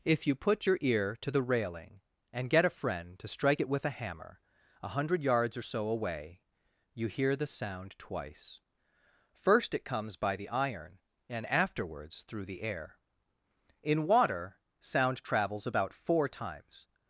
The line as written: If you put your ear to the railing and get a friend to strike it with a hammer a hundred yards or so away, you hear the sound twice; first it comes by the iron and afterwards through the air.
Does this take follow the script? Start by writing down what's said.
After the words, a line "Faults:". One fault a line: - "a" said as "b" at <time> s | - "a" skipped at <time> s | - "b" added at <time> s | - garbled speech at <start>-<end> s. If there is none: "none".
If you put your ear to the railing and get a friend to strike it with a hammer a hundred yards or so away, you hear the sound twice; first it comes by the iron and afterwards through the air. In water sound travels about four times
Faults:
- "In water sound travels about four times" added at 13.8 s